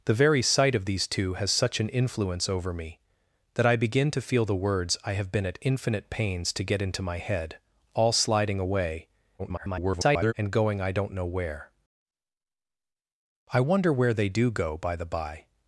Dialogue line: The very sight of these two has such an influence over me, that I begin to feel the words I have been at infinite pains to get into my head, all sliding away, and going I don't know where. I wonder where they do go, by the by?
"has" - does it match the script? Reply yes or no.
yes